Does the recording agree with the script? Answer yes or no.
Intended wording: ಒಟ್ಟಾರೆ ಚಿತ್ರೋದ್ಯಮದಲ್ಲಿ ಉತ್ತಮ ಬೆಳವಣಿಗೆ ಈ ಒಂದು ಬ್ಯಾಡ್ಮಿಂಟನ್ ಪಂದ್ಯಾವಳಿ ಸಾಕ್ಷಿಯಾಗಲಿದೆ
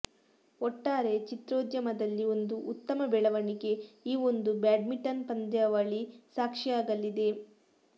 no